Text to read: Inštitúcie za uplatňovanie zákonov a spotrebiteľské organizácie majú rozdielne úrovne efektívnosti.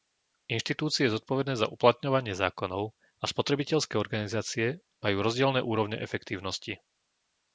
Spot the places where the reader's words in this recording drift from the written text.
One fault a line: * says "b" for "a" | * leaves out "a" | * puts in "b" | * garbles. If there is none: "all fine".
* puts in "zodpovedné"